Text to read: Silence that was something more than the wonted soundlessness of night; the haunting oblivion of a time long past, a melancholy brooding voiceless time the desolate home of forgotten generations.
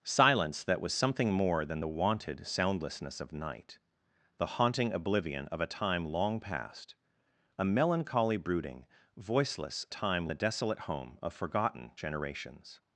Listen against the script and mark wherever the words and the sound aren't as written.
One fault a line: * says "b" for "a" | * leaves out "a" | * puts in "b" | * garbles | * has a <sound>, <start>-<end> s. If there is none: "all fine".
all fine